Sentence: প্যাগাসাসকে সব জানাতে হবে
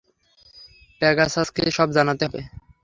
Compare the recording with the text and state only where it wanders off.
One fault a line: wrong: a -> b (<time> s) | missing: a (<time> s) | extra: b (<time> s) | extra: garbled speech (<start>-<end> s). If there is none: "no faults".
no faults